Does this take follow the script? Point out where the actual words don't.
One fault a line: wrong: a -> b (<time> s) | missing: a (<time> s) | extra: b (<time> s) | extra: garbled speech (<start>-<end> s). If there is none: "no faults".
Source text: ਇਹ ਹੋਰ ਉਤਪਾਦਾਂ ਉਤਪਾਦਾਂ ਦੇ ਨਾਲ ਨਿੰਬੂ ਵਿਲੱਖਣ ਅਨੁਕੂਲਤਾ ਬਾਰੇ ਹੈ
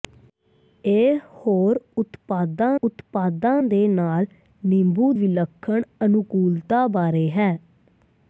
no faults